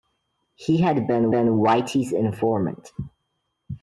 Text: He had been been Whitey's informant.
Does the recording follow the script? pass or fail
pass